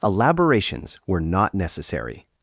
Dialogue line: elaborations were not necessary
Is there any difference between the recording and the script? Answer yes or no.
no